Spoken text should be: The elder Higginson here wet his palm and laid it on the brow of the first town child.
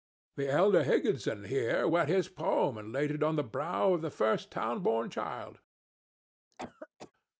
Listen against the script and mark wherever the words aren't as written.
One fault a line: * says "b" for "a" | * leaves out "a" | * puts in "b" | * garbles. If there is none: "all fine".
* puts in "born"